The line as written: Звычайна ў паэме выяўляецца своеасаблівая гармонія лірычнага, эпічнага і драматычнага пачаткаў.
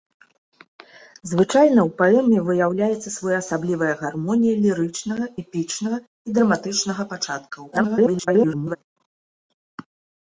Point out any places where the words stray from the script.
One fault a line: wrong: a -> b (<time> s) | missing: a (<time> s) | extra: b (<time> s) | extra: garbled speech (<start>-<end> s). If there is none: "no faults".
extra: garbled speech (7.7-8.8 s)